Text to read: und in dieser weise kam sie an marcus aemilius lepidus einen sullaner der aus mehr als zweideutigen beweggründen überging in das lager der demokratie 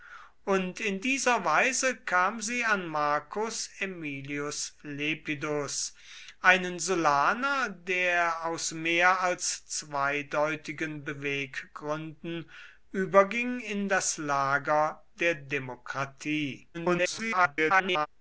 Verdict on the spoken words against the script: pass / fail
fail